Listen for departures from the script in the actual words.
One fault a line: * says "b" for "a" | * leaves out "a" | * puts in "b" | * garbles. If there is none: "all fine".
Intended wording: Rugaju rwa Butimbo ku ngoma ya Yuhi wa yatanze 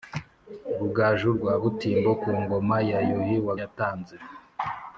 all fine